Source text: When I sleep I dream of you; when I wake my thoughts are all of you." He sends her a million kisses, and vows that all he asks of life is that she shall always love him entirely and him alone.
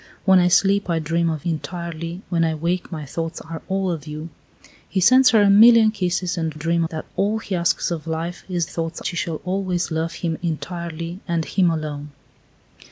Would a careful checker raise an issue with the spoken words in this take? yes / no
yes